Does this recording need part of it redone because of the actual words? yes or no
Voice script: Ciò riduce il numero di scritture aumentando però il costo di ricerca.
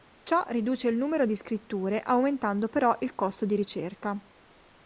no